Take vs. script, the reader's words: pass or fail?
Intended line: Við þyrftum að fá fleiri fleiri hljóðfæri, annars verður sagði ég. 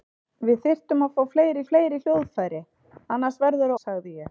pass